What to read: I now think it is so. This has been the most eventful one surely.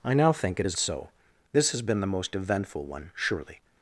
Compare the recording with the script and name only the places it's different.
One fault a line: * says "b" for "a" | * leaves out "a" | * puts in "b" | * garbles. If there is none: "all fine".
all fine